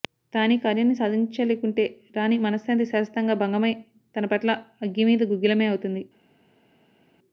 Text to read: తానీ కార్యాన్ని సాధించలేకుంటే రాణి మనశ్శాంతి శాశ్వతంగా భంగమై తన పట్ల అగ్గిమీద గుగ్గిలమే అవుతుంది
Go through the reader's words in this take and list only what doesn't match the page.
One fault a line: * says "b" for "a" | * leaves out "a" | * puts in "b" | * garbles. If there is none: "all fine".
all fine